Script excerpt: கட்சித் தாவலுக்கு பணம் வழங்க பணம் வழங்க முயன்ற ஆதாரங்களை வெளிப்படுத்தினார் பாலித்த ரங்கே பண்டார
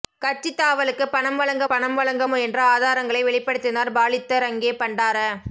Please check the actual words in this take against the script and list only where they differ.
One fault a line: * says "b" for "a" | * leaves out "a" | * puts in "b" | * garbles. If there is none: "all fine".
all fine